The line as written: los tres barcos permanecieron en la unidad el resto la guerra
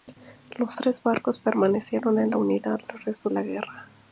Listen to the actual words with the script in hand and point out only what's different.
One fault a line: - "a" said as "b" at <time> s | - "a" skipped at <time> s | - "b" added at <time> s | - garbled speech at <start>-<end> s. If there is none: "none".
none